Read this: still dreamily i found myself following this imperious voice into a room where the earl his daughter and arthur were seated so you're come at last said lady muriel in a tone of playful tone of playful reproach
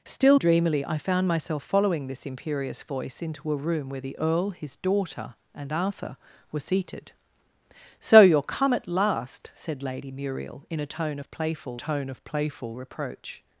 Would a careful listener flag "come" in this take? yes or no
no